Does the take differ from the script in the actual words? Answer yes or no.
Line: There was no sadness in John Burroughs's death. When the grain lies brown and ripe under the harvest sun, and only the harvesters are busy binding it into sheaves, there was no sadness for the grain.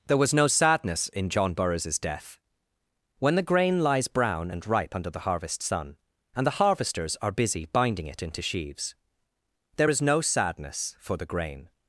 yes